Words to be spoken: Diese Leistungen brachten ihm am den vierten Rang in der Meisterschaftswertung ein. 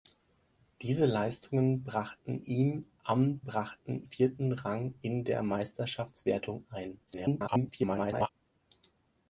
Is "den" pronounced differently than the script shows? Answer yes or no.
yes